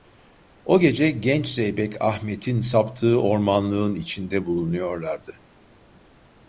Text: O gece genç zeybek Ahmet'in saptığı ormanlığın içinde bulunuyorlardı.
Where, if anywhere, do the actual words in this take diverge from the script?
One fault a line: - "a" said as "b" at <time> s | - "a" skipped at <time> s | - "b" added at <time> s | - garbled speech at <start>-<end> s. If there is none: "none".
none